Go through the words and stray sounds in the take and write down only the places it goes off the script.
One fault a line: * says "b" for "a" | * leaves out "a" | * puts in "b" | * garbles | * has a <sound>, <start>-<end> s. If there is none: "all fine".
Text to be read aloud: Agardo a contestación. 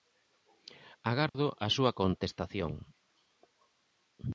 * has a dropout, 1.3-1.3 s
* puts in "súa"